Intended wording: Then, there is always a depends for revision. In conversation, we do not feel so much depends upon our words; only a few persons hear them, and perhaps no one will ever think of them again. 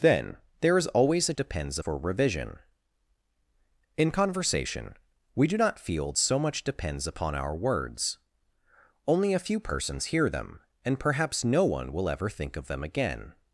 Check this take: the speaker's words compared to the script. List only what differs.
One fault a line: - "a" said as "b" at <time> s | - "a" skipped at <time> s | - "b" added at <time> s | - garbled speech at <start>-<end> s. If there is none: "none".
none